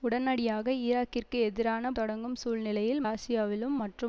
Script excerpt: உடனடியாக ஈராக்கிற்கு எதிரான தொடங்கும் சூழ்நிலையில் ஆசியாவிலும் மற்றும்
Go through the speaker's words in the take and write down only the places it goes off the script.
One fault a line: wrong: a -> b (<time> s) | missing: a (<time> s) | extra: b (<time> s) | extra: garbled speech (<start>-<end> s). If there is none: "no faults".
no faults